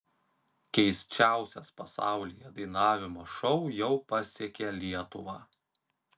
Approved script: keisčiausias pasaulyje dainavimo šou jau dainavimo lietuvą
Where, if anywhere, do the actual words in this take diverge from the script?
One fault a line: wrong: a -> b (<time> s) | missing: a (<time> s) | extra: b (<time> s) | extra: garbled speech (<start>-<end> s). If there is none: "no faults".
wrong: dainavimo -> pasiekė (4.1 s)